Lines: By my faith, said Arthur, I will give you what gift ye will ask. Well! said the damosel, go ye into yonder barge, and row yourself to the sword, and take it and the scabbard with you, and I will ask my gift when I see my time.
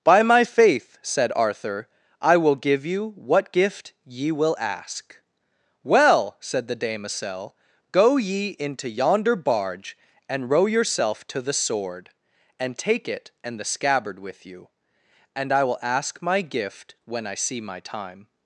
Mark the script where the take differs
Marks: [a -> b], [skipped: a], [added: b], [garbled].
By my faith, said Arthur, I will give you what gift ye will ask. Well! said the damosel, go ye into yonder barge, and row yourself to the sword, and take it and the scabbard with you, and I will ask my gift when I see my time.